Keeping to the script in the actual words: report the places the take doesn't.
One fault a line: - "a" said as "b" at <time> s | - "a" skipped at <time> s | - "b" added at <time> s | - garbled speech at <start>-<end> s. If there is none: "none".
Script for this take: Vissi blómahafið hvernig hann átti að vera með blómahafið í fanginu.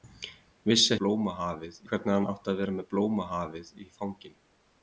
none